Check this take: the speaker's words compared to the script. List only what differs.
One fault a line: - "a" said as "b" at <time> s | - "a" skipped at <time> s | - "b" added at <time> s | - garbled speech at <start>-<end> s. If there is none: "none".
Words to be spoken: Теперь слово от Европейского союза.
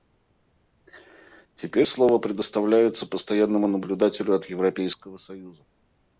- "предоставляется Постоянному наблюдателю" added at 2.2 s